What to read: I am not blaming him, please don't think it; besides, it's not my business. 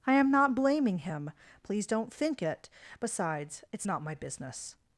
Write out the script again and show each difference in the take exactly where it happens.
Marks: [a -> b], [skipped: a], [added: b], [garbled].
I am not blaming him, please don't think it; besides, it's not my business.